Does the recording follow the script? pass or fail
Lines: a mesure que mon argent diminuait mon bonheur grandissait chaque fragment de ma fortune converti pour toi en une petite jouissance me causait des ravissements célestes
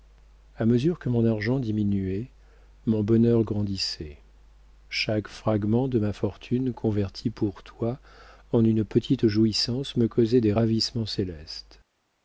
pass